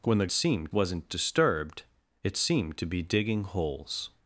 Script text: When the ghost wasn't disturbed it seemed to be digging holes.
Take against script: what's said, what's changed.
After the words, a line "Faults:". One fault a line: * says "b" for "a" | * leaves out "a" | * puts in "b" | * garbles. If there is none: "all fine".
When the seemed wasn't disturbed it seemed to be digging holes.
Faults:
* says "seemed" for "ghost"